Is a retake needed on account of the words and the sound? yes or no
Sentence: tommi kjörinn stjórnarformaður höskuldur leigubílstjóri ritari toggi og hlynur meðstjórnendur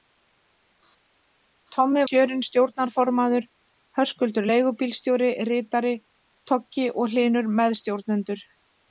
no